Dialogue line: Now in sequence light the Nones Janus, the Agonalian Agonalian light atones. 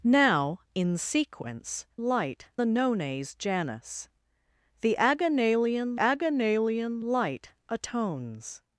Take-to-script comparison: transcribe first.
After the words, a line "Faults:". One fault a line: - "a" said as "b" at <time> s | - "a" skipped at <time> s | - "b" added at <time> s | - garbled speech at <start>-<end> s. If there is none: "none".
Now in sequence light the Nones Janus, the Agonalian Agonalian light atones.
Faults:
none